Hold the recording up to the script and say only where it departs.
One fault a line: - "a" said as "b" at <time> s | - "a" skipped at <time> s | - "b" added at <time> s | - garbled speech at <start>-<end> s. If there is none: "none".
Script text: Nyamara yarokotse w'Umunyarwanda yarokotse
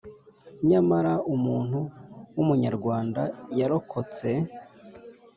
- "yarokotse" said as "umuntu" at 1.3 s